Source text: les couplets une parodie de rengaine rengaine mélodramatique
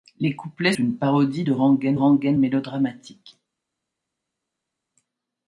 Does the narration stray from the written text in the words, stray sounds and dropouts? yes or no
no